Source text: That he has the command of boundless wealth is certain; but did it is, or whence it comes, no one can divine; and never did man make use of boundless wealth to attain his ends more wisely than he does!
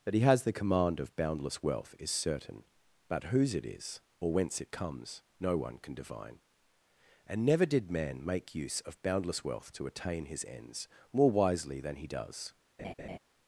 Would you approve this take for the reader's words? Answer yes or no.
no